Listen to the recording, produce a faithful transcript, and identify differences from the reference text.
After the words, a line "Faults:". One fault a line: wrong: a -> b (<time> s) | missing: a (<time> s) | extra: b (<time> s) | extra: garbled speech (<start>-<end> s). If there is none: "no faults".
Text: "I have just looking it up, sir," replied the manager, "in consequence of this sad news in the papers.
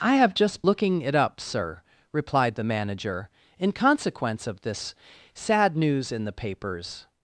"I have just looking it up, sir," replied the manager, "in consequence of this sad news in the papers.
Faults:
no faults